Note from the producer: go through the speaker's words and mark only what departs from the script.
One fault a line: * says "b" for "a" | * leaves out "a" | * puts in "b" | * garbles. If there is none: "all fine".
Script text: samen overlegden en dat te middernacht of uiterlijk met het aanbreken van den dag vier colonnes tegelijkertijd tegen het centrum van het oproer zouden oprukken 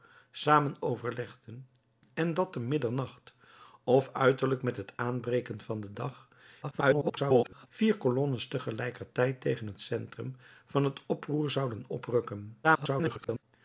* garbles
* garbles